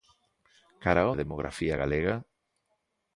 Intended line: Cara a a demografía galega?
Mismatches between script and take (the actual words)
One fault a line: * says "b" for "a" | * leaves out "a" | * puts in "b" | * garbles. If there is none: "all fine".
all fine